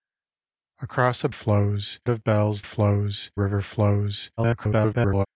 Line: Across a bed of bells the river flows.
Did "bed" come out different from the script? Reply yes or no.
yes